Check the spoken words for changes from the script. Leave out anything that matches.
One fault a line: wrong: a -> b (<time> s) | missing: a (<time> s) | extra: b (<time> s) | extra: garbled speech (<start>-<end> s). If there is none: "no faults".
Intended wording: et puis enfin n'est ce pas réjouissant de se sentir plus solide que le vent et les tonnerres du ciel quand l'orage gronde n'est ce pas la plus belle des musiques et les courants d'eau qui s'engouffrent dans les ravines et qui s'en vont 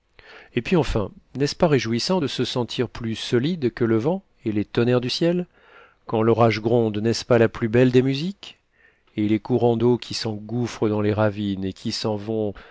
no faults